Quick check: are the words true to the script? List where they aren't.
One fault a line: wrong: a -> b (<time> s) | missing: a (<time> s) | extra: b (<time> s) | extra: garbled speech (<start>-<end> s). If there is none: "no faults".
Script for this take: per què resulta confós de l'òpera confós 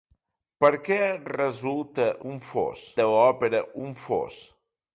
no faults